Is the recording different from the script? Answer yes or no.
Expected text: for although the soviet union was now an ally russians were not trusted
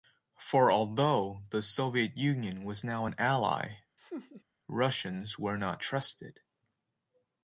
no